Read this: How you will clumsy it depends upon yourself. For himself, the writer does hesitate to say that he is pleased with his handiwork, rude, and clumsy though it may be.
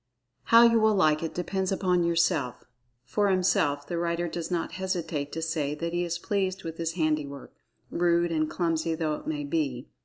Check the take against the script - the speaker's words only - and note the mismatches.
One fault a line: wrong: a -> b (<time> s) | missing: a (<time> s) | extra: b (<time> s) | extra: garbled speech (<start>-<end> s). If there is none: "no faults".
wrong: clumsy -> like (0.9 s)
extra: not (4.5 s)